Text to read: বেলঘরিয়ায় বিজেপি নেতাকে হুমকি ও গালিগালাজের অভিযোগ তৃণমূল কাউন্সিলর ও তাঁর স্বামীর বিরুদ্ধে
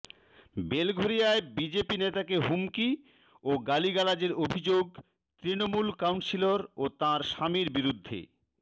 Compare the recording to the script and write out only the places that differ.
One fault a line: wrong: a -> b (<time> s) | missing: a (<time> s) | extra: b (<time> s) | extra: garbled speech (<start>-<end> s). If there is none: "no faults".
no faults